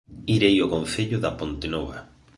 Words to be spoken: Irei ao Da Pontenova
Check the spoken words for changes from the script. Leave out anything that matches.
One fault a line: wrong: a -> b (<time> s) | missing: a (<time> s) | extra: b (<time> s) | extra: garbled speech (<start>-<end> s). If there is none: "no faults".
extra: Concello (0.7 s)